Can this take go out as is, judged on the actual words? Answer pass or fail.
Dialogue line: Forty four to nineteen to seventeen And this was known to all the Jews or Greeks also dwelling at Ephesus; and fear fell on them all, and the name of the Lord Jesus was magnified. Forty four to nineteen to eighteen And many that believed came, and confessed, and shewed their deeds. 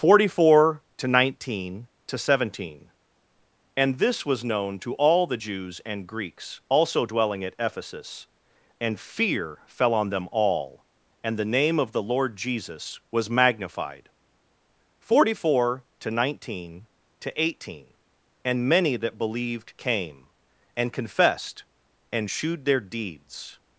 fail